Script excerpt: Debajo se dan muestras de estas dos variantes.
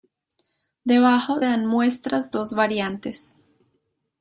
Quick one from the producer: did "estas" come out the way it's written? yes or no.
no